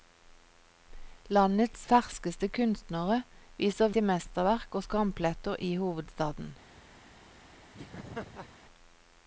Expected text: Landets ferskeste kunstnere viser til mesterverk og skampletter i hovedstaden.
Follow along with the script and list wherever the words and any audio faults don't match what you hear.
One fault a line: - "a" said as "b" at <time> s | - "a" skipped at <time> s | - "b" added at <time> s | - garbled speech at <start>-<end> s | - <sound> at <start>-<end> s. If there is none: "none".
- laugh at 7.7-8.5 s